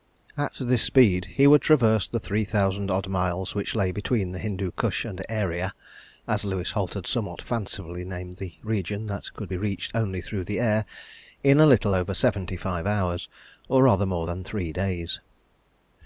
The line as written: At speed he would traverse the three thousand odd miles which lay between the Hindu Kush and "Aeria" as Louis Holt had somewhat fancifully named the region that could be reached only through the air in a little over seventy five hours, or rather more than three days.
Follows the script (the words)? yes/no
no